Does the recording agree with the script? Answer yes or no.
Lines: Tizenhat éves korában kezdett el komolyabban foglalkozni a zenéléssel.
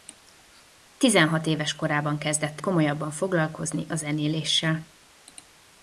no